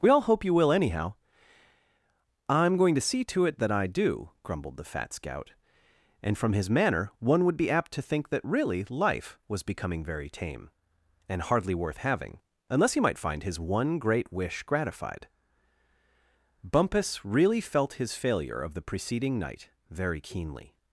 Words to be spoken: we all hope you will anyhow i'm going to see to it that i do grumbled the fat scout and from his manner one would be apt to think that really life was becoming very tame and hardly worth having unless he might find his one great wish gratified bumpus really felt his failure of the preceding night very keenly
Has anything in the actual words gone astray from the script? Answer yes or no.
no